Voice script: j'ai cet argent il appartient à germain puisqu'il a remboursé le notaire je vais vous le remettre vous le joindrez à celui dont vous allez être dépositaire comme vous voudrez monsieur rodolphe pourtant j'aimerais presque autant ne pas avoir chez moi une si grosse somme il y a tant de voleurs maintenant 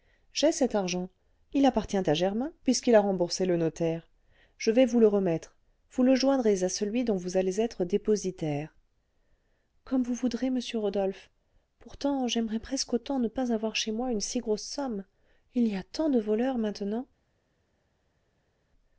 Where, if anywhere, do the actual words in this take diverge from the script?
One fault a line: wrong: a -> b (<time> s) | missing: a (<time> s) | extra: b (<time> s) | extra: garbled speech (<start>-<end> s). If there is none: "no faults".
no faults